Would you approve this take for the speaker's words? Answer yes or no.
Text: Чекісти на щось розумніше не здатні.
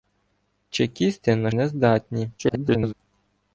no